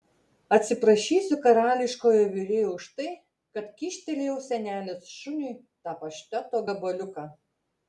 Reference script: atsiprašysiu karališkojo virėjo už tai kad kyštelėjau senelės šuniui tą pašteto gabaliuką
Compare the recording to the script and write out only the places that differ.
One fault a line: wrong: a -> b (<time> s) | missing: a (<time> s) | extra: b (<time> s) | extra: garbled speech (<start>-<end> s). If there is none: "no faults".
no faults